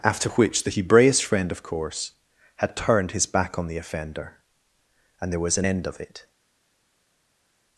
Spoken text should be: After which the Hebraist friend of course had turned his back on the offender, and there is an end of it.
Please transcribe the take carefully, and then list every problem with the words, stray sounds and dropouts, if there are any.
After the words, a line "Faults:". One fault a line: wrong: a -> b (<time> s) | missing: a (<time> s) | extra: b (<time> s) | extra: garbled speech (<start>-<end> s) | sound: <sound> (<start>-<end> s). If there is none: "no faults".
After which the Hebraist friend of course had turned his back on the offender, and there was an end of it.
Faults:
wrong: is -> was (5.4 s)